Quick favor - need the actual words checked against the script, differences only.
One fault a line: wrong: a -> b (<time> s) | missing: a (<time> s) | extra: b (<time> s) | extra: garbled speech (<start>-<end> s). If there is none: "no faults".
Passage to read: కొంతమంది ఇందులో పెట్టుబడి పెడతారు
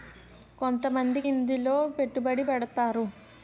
no faults